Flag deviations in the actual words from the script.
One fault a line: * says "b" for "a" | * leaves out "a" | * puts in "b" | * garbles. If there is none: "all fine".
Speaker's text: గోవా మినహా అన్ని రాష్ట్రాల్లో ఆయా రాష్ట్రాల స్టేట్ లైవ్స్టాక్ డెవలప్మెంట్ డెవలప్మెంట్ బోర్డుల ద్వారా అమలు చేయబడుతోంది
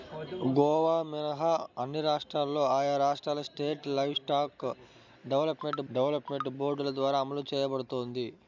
all fine